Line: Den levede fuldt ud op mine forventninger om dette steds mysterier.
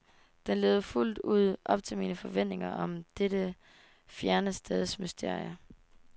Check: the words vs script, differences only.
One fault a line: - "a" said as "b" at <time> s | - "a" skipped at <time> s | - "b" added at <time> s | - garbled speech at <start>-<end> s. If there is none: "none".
- "til" added at 1.8 s
- "fjerne" added at 4.0 s